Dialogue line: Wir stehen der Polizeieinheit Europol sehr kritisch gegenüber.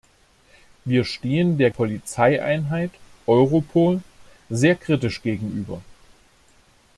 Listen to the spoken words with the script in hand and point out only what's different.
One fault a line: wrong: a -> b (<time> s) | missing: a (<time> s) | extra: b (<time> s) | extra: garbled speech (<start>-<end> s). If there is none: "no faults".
no faults